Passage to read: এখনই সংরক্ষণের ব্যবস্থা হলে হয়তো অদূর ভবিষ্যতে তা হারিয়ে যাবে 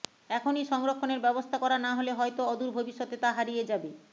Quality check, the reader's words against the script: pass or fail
fail